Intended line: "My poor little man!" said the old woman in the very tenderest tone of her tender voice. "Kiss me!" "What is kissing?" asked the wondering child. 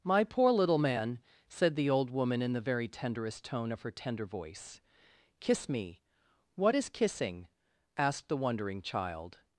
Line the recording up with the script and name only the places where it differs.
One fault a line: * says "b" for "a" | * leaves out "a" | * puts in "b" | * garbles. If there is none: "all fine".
all fine